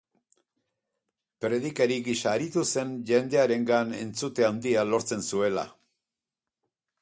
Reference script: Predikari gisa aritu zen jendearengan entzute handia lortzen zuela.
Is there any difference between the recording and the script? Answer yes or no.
no